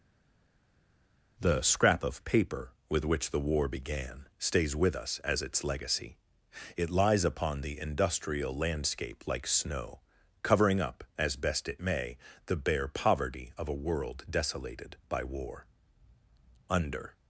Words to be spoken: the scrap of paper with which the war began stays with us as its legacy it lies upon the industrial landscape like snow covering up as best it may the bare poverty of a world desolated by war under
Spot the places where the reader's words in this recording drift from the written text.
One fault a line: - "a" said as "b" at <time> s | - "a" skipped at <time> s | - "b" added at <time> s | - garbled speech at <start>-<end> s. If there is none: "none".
none